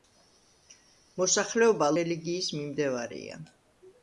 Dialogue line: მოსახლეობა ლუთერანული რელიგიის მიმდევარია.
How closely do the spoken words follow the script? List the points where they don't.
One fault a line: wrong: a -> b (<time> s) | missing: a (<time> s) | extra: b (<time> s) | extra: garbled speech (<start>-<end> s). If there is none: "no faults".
missing: ლუთერანული (1.9 s)